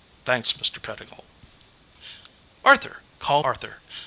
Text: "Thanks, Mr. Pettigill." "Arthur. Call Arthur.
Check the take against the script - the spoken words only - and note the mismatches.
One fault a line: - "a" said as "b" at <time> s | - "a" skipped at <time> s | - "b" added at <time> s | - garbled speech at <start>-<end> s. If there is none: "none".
none